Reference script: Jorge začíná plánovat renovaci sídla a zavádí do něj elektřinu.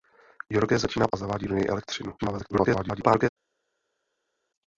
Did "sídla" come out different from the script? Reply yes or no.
yes